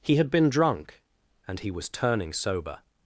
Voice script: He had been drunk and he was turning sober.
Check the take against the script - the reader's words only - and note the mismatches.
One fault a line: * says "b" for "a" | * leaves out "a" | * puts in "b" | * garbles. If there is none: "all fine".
all fine